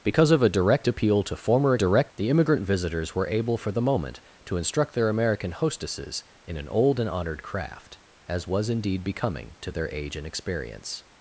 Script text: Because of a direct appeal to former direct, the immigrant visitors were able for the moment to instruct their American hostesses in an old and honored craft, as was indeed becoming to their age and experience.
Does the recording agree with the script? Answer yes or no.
yes